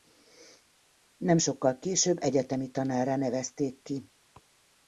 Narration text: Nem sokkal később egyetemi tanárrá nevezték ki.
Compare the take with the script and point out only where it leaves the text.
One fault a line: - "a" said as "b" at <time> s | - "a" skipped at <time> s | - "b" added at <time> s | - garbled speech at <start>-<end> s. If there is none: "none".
none